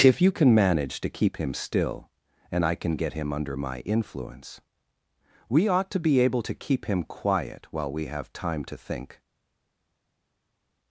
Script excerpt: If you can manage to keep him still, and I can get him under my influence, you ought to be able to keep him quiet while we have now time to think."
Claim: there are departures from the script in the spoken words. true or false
true